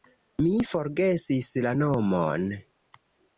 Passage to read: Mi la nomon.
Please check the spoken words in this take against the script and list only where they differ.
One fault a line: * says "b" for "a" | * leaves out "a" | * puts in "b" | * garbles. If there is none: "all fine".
* puts in "forgesis"